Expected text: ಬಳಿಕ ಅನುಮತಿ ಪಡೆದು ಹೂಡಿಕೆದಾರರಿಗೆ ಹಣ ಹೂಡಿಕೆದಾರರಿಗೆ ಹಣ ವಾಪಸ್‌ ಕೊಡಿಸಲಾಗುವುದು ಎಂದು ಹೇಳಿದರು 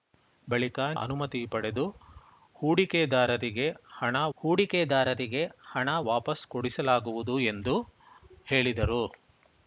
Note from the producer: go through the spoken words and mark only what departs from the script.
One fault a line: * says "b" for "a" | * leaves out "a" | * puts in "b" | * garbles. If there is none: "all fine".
all fine